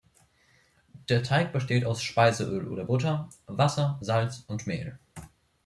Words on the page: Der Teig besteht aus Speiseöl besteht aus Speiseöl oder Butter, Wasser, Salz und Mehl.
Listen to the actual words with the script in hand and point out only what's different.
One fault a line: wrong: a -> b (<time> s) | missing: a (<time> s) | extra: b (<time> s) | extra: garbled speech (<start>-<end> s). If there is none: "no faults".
missing: besteht aus Speiseöl (2.7 s)